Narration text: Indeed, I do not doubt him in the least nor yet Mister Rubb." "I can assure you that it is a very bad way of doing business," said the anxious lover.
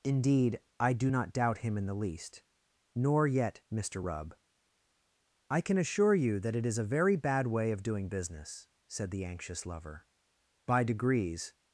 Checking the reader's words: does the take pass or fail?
fail